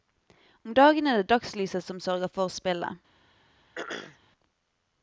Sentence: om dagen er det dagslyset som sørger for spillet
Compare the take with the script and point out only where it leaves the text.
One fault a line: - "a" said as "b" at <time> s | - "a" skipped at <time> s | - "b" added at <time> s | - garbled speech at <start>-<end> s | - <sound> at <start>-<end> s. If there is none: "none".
- throat clearing at 3.8-4.2 s